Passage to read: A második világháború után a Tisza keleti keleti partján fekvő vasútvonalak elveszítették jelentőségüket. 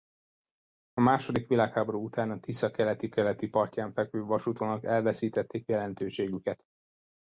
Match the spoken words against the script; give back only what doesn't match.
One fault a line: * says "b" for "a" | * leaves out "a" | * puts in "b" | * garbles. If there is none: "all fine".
all fine